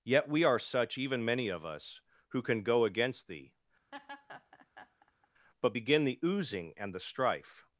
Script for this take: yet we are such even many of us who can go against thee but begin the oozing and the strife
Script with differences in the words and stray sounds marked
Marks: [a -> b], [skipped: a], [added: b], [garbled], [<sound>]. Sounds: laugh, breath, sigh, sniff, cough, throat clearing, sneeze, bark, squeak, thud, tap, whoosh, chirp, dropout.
yet we are such even many of us who can go against thee [laugh] but begin the oozing and the strife